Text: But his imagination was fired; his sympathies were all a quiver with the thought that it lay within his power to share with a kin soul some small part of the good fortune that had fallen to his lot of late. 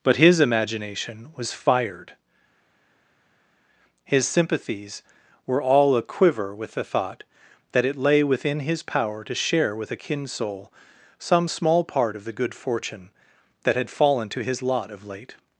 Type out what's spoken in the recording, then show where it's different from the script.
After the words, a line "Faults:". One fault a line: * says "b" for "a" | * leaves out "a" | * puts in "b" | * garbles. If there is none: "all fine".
But his imagination was fired; his sympathies were all a quiver with the thought that it lay within his power to share with a kin soul some small part of the good fortune that had fallen to his lot of late.
Faults:
all fine